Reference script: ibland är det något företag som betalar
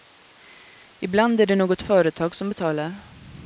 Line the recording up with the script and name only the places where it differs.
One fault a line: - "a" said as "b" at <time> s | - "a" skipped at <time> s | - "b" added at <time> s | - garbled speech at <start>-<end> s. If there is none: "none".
none